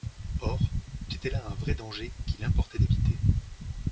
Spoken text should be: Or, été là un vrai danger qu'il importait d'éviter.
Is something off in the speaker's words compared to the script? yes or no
no